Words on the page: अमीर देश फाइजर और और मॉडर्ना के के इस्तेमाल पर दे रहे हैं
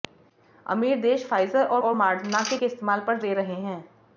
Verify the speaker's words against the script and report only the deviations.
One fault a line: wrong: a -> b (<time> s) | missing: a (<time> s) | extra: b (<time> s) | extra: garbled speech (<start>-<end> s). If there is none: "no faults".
no faults